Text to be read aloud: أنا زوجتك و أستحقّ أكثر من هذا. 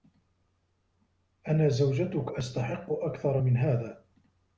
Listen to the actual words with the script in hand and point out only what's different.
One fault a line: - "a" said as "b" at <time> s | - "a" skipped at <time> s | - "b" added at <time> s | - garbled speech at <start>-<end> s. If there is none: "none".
- "و" skipped at 2.3 s